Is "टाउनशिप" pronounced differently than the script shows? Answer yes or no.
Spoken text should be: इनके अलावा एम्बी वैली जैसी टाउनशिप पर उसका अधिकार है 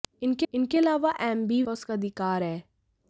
yes